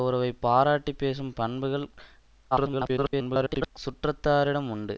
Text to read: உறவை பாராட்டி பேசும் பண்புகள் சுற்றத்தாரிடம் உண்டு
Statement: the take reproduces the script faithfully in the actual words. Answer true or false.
false